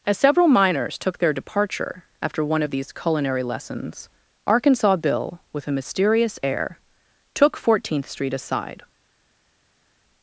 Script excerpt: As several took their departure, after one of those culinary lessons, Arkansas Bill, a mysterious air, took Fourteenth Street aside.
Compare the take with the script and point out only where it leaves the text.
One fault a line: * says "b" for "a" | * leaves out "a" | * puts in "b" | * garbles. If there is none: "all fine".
* puts in "miners"
* says "these" for "those"
* puts in "with"